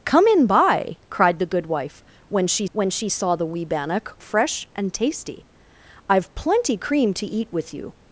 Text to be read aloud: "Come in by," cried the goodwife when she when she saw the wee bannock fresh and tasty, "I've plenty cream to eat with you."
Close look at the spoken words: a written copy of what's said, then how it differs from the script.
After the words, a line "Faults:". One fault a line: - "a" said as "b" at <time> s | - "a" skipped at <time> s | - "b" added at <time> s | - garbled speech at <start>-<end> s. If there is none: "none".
"Come in by," cried the goodwife when she when she saw the wee bannock fresh and tasty, "I've plenty cream to eat with you."
Faults:
none